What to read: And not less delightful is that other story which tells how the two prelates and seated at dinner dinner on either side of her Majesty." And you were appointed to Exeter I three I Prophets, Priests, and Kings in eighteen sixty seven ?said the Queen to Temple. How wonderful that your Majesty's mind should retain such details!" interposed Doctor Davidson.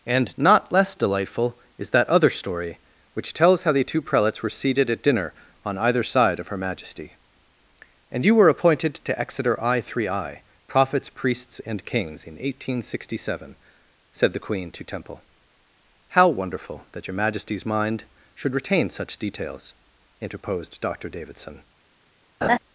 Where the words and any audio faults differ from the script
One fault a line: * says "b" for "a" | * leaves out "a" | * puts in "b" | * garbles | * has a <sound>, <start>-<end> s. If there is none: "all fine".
* says "were" for "and"
* leaves out "dinner"
* has a laugh, 22.4-22.6 s